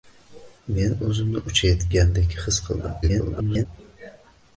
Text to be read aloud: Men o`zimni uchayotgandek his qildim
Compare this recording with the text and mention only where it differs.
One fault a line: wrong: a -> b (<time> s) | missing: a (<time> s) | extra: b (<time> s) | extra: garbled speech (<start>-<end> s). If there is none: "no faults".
extra: garbled speech (3.0-3.7 s)